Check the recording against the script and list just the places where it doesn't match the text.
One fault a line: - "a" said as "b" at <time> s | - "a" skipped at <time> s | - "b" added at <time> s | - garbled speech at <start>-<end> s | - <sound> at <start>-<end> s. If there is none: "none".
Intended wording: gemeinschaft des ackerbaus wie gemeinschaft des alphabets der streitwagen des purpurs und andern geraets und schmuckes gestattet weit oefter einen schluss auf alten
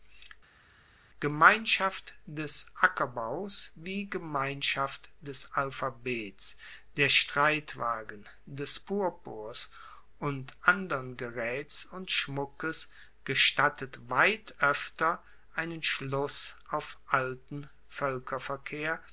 none